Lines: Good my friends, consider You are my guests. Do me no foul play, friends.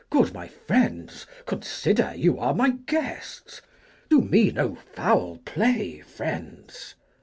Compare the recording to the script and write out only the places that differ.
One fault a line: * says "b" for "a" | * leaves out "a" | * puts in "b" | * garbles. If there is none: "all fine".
all fine